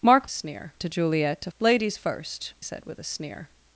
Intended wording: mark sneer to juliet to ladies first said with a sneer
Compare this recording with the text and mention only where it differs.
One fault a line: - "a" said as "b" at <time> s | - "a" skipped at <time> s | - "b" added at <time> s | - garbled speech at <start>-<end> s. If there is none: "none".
none